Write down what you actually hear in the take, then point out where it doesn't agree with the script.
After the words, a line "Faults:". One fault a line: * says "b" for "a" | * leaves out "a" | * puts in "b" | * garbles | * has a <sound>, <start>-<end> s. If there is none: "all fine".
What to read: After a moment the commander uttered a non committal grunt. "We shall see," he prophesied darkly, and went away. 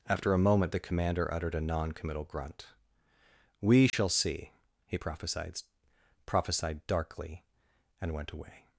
After a moment the commander uttered a non committal grunt. "We shall see," he prophesied prophesied darkly, and went away.
Faults:
* has a dropout, 3.9-3.9 s
* puts in "prophesied"